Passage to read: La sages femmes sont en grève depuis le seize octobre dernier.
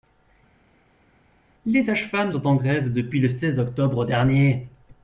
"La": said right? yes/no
no